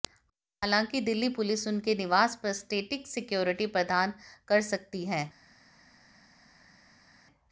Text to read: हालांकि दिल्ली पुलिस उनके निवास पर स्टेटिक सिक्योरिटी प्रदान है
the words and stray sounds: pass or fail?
fail